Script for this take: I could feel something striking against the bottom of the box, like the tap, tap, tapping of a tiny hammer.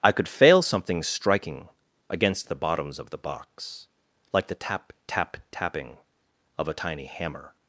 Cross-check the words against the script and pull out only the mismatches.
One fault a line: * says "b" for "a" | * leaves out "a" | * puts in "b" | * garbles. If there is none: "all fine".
* says "fail" for "feel"
* says "bottoms" for "bottom"